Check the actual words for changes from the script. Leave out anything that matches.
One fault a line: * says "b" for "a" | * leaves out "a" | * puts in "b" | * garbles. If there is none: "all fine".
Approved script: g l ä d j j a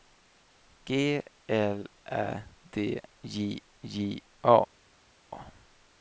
all fine